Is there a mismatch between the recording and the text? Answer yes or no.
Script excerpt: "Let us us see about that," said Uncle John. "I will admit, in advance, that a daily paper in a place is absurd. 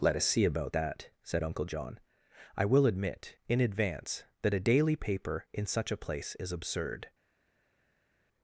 yes